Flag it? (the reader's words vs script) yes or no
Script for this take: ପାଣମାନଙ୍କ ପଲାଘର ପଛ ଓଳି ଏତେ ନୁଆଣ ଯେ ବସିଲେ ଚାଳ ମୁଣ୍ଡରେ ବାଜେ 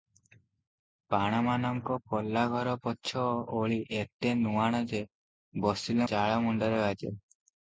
no